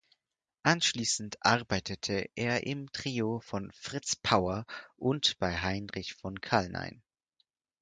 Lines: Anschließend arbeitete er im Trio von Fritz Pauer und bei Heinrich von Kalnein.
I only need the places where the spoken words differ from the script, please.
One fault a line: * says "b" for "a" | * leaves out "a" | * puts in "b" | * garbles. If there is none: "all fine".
all fine